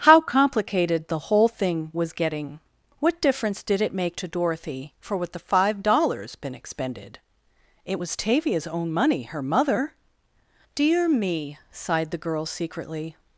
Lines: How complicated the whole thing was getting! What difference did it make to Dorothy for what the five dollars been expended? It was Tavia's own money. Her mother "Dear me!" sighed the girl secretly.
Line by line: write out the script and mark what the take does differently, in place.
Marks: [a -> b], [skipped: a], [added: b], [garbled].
How complicated the whole thing was getting! What difference did it make to Dorothy for what the five dollars been expended? It was Tavia's own money. Her mother "Dear me!" sighed the girl secretly.